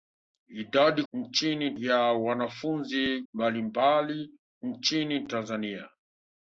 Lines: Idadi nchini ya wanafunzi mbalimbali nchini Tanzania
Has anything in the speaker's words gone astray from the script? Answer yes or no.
no